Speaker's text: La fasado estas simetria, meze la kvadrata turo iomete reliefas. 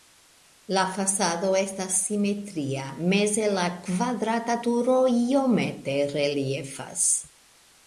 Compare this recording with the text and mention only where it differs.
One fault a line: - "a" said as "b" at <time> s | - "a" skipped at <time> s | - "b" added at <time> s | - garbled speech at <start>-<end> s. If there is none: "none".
none